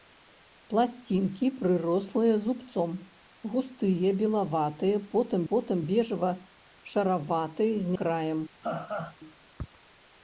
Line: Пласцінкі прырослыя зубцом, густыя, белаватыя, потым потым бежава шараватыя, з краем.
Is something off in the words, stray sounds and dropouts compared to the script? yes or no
yes